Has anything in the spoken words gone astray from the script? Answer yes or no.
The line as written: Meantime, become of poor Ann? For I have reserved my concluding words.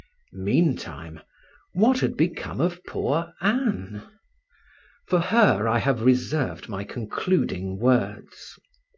yes